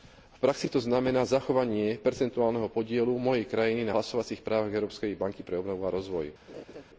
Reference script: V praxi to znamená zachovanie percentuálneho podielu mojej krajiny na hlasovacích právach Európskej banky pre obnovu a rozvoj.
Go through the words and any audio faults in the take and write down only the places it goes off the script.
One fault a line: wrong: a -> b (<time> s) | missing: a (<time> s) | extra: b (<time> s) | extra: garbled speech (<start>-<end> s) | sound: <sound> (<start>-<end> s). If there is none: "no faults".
sound: laugh (6.5-6.8 s)